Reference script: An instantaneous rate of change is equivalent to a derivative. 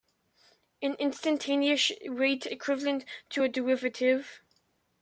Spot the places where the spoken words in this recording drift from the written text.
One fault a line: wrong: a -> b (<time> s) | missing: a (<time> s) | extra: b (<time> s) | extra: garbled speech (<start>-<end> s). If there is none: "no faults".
missing: of change is (2.5 s)